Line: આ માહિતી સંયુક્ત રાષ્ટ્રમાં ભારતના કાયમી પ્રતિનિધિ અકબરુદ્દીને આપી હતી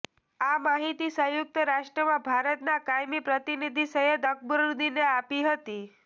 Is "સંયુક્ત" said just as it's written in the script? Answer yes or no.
yes